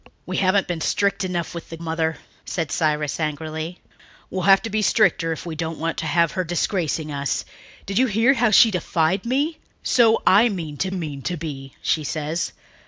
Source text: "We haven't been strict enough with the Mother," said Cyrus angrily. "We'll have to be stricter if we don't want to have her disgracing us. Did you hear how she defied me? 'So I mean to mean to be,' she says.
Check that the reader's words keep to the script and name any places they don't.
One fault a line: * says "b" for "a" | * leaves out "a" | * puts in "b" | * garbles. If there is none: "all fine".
all fine